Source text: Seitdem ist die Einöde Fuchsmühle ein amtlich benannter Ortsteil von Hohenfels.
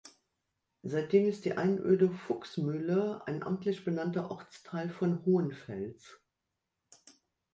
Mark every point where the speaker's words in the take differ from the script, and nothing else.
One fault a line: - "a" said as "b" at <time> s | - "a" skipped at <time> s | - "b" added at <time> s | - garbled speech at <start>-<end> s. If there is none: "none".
none